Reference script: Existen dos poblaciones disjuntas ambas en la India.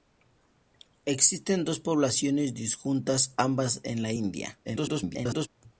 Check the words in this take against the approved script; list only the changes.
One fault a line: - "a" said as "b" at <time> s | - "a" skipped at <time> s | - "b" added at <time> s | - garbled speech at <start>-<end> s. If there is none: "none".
- garbled speech at 4.6-5.5 s